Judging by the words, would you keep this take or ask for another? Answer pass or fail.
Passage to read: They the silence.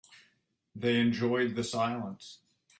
fail